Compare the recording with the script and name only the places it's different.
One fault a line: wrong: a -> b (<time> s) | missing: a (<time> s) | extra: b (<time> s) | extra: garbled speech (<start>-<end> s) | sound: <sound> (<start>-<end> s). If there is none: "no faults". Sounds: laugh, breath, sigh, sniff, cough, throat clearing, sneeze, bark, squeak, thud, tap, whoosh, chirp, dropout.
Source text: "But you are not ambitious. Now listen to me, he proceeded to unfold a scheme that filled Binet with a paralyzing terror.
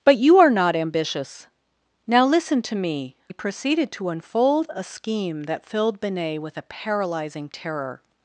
no faults